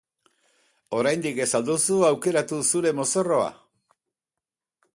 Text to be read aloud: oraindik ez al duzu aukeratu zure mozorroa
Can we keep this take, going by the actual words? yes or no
yes